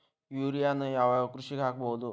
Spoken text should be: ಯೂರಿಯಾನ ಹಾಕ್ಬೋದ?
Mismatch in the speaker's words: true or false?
true